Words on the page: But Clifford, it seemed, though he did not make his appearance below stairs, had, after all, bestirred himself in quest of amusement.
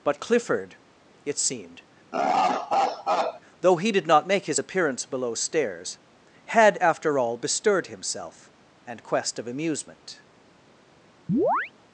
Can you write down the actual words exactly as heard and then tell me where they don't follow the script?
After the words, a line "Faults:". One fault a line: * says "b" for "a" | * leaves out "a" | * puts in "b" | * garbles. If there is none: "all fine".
But Clifford, it seemed, though he did not make his appearance below stairs, had, after all, bestirred himself and quest of amusement.
Faults:
* says "and" for "in"